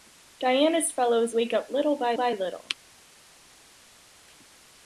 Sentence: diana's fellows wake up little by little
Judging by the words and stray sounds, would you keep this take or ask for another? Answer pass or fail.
fail